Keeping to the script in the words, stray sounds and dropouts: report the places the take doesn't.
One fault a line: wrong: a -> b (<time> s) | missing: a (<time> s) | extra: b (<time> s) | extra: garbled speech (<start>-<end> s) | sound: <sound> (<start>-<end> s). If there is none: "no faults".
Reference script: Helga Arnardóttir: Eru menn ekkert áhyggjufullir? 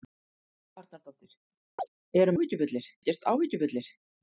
sound: chirp (1.8-1.9 s)
wrong: menn -> áhyggjufullir (2.4 s)